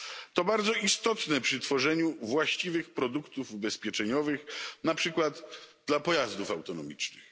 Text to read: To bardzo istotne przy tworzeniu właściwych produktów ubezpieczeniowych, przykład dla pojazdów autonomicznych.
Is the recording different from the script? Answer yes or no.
yes